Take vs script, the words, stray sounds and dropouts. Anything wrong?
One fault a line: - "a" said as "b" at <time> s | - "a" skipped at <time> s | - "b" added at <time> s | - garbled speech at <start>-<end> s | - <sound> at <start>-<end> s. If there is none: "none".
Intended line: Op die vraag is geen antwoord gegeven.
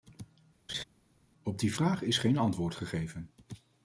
- laugh at 0.7-0.8 s